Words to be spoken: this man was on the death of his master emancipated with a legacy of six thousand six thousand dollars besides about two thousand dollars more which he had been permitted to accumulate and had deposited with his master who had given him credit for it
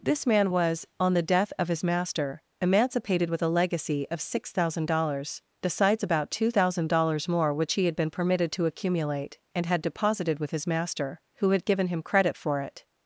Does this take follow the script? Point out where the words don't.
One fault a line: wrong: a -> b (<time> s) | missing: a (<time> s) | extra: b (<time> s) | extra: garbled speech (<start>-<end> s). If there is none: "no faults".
missing: six thousand (4.9 s)